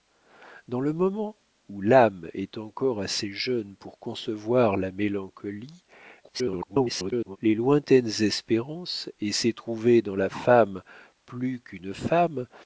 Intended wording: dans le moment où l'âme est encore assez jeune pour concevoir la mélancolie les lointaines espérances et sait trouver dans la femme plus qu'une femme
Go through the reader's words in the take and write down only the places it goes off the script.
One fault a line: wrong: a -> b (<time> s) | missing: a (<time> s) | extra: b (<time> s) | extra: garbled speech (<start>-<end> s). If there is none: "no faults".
extra: garbled speech (6.2-7.4 s)